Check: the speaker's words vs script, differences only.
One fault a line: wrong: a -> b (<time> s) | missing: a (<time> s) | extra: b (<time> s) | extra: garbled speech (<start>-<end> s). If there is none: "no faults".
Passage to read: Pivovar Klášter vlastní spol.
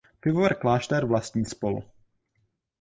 no faults